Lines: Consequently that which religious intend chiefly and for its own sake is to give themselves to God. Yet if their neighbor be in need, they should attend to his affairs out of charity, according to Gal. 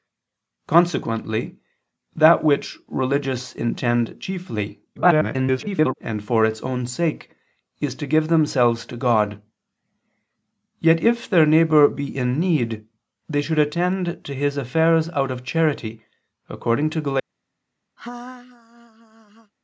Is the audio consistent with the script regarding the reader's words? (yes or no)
no